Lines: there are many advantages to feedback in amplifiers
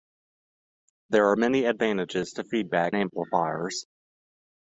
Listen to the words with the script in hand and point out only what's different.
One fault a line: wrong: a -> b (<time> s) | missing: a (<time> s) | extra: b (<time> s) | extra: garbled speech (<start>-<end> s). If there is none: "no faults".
missing: in (2.9 s)